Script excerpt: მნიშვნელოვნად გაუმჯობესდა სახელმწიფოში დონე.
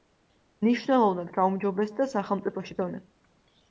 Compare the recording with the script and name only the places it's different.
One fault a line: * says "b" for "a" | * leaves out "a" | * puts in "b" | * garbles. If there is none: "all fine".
all fine